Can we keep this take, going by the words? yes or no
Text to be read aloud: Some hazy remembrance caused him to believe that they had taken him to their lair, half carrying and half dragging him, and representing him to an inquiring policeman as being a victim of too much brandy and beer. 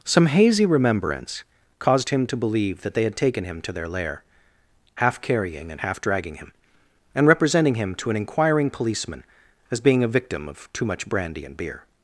yes